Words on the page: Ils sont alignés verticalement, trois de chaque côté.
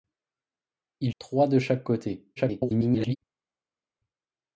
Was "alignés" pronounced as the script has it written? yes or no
no